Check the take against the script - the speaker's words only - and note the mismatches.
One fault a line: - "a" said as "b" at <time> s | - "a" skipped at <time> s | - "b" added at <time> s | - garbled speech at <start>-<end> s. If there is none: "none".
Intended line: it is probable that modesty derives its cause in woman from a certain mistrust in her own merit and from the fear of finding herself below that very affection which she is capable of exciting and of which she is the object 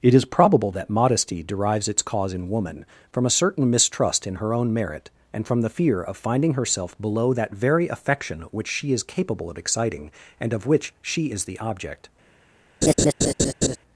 none